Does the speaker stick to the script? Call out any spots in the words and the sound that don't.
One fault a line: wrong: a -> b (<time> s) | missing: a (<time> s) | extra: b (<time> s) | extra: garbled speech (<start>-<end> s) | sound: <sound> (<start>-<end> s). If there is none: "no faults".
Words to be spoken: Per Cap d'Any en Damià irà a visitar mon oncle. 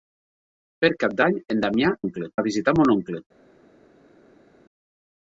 wrong: irà -> oncle (2.0 s)